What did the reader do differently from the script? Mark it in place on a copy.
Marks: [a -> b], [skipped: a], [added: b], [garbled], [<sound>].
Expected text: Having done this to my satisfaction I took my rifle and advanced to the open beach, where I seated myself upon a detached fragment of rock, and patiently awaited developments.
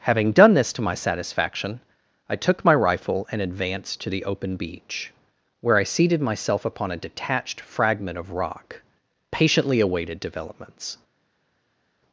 Having done this to my satisfaction I took my rifle and advanced to the open beach, where I seated myself upon a detached fragment of rock, [skipped: and] patiently awaited developments.